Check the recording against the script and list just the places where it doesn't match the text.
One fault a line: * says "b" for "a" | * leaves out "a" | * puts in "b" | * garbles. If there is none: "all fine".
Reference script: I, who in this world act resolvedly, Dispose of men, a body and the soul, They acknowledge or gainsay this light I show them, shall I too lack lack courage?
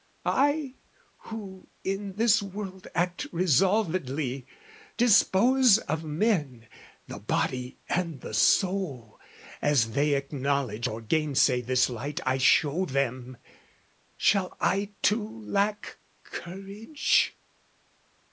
* says "the" for "a"
* puts in "As"
* leaves out "lack"